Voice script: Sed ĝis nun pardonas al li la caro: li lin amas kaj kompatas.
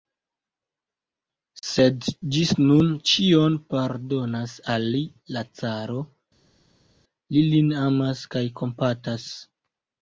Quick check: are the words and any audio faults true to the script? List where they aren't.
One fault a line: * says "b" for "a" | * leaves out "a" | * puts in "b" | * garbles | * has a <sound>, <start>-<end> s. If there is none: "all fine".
* puts in "ĉion"